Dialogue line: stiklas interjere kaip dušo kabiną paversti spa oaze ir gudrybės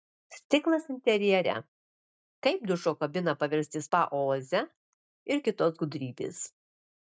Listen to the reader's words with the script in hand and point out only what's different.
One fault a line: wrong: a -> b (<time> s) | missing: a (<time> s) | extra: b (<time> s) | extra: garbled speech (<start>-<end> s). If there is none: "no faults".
extra: kitos (5.5 s)